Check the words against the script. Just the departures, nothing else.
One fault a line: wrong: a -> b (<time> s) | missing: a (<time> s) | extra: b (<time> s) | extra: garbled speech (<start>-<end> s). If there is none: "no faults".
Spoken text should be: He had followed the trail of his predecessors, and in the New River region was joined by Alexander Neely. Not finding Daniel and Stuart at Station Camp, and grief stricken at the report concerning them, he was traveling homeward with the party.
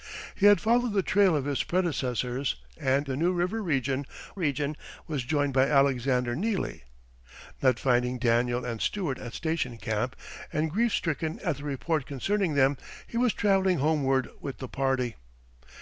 missing: in (3.1 s)
extra: region (4.3 s)